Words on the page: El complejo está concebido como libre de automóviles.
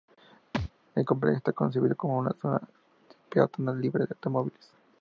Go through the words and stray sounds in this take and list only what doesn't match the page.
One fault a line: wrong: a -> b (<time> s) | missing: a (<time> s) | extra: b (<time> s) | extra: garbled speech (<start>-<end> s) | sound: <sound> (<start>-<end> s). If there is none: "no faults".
sound: thud (0.5-0.7 s)
extra: una zona peatonal (2.2 s)